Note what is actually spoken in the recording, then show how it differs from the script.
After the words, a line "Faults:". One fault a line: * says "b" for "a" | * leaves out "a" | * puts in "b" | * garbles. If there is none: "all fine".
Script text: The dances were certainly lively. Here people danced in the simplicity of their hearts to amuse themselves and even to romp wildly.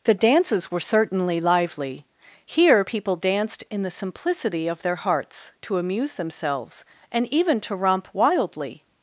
The dances were certainly lively. Here people danced in the simplicity of their hearts to amuse themselves and even to romp wildly.
Faults:
all fine